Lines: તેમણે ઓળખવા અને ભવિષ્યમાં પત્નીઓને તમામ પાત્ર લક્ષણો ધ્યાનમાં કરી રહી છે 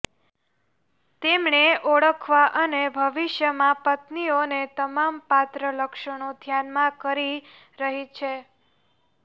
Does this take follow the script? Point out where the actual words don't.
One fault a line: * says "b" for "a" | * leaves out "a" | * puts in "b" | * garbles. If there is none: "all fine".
all fine